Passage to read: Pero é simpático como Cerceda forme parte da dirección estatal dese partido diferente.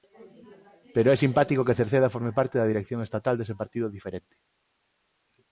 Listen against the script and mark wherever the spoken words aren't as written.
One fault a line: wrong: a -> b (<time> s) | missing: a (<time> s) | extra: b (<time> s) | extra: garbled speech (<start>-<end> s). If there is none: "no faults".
wrong: como -> que (1.7 s)